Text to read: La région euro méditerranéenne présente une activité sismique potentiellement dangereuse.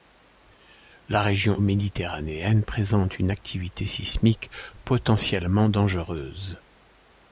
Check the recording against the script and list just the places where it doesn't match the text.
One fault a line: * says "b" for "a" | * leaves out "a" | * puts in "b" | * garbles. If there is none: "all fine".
* leaves out "euro"